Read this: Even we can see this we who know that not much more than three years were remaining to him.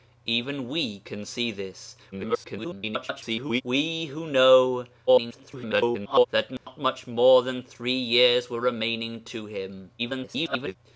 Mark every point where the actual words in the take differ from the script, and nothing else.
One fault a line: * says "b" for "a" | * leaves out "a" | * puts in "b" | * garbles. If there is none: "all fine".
* garbles
* garbles
* garbles